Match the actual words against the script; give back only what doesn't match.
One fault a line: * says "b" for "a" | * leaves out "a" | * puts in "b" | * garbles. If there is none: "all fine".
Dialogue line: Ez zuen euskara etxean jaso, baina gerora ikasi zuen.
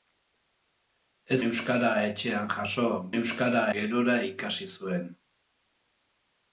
* leaves out "zuen"
* says "euskara" for "baina"